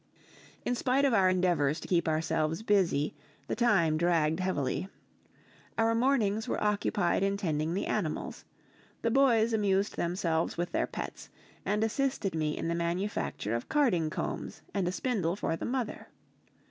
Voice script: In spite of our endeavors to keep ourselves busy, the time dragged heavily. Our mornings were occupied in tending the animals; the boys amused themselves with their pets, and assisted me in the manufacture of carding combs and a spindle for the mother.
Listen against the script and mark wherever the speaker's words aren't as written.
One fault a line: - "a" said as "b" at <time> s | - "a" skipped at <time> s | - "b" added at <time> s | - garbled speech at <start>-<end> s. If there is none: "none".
none